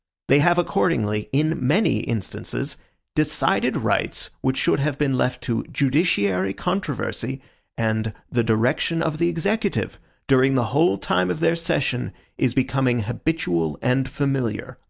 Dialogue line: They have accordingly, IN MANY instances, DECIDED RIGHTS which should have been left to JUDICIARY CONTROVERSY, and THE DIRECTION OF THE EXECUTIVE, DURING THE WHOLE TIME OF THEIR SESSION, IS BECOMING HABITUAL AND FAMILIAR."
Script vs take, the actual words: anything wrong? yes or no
no